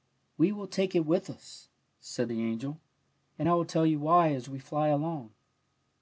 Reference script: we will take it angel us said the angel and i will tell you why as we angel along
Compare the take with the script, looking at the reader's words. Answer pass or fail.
fail